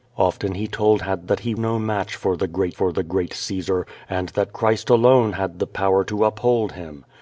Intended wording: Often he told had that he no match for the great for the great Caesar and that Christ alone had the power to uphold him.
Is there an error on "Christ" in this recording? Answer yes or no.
no